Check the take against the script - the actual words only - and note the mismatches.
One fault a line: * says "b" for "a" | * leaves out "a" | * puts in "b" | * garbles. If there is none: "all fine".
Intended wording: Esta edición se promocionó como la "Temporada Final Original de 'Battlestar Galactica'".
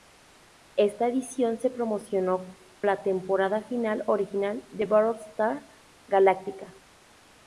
* leaves out "como"